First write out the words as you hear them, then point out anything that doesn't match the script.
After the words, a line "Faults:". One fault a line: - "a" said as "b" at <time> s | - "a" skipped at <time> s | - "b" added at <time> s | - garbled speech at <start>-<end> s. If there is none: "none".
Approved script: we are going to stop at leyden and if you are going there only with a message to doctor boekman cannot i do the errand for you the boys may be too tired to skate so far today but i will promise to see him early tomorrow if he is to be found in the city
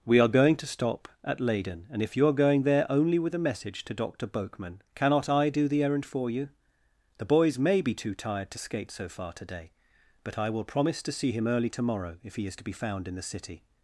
we are going to stop at leyden and if you are going there only with a message to doctor boekman cannot i do the errand for you the boys may be too tired to skate so far today but i will promise to see him early tomorrow if he is to be found in the city
Faults:
none